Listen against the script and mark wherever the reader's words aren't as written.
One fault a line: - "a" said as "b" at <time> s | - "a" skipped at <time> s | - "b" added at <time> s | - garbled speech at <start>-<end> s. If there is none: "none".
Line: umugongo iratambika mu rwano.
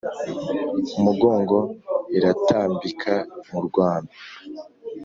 none